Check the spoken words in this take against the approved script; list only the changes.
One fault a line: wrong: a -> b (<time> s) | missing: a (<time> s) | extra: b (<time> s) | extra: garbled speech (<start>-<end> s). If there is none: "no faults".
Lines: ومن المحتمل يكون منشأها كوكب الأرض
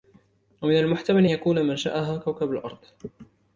no faults